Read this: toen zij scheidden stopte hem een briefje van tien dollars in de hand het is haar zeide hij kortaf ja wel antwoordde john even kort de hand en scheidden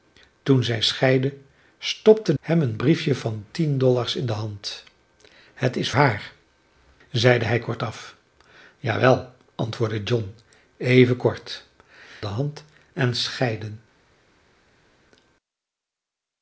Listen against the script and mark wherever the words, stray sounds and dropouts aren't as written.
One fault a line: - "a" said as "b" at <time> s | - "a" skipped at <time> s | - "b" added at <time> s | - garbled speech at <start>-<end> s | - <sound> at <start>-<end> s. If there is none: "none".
none